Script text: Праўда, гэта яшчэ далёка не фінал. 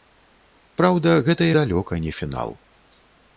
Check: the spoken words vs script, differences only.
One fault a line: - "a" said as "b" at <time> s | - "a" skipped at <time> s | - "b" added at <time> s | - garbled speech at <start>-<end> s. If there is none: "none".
- "яшчэ" skipped at 1.5 s